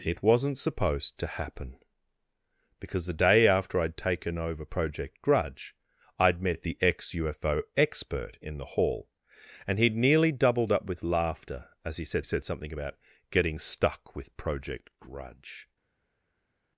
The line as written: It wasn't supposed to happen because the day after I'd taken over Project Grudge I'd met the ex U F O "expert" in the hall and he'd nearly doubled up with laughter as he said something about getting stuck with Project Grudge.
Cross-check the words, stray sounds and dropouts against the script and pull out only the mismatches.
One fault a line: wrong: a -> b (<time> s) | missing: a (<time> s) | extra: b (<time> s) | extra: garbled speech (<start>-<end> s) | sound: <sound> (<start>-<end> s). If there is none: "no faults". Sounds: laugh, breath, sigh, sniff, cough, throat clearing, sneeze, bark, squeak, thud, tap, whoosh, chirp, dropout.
extra: said (12.2 s)